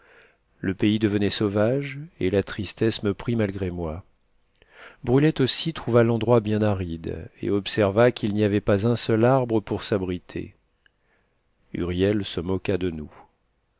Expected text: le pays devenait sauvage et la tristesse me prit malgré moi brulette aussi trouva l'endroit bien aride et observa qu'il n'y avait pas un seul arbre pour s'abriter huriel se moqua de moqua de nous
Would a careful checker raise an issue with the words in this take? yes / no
yes